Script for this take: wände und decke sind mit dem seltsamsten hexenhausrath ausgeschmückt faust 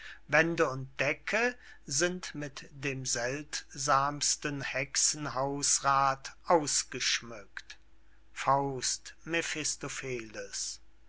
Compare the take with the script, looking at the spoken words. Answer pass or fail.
pass